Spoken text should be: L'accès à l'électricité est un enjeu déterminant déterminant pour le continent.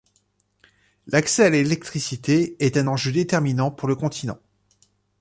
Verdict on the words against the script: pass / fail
fail